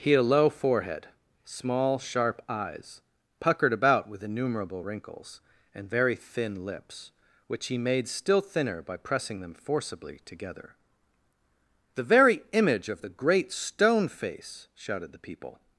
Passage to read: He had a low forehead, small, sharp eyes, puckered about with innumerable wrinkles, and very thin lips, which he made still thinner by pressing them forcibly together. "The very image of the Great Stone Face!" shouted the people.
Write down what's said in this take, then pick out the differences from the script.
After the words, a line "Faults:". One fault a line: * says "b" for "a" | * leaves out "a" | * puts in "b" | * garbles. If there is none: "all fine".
He had a low forehead, small, sharp eyes, puckered about with innumerable wrinkles, and very thin lips, which he made still thinner by pressing them forcibly together. "The very image of the Great Stone Face!" shouted the people.
Faults:
all fine